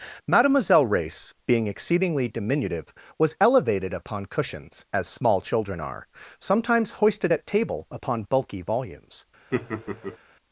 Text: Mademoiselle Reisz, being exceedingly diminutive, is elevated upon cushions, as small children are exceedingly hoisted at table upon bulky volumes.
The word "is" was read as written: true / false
false